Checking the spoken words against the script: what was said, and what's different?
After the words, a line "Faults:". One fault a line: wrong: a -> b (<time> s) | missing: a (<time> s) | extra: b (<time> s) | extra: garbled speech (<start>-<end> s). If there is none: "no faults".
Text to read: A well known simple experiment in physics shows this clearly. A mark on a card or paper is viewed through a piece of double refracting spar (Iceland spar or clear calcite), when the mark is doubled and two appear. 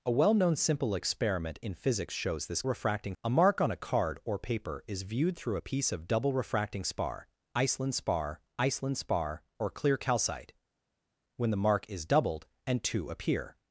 A well known simple experiment in physics shows this refracting. A mark on a card or paper is viewed through a piece of double refracting spar (Iceland spar iceland spar or clear calcite), when the mark is doubled and two appear.
Faults:
wrong: clearly -> refracting (2.6 s)
extra: iceland spar (8.6 s)